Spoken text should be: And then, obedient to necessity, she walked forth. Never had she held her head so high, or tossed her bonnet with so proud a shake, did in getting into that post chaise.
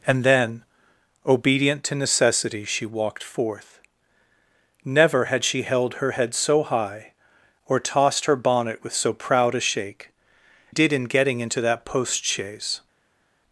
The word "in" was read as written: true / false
true